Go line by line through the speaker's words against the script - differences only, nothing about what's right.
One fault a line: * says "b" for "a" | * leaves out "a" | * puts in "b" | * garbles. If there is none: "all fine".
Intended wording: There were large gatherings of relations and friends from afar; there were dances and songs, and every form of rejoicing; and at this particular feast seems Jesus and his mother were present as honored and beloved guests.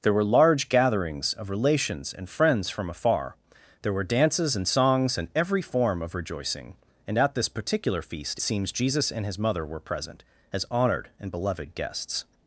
all fine